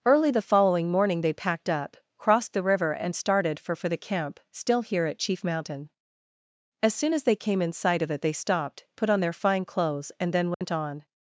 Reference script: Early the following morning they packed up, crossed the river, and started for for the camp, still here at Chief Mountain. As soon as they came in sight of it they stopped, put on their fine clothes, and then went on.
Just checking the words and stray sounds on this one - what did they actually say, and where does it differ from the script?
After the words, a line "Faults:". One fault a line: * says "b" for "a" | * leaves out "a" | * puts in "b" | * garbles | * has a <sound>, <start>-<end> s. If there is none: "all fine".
Early the following morning they packed up, crossed the river, and started for for the camp, still here at Chief Mountain. As soon as they came in sight of it they stopped, put on their fine clothes, and then went on.
Faults:
* has a dropout, 10.5-10.6 s